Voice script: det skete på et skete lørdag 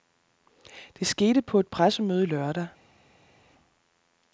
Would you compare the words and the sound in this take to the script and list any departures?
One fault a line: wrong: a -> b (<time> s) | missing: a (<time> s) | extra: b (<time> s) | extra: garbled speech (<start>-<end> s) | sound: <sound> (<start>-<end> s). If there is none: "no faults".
wrong: skete -> pressemøde (1.7 s)